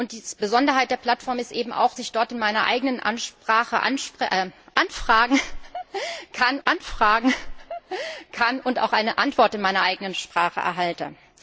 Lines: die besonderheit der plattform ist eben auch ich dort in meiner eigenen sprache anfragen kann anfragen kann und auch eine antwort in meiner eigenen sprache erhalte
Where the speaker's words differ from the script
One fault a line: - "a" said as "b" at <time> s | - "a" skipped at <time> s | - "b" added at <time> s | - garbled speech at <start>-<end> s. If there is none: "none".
none